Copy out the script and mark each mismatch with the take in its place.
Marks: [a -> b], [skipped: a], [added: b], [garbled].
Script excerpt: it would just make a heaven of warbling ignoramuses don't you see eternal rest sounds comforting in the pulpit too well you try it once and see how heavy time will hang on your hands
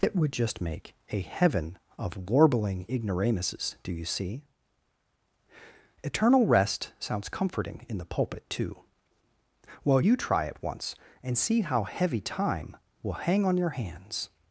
it would just make a heaven of warbling ignoramuses [don't -> do] you see eternal rest sounds comforting in the pulpit too well you try it once and see how heavy time will hang on your hands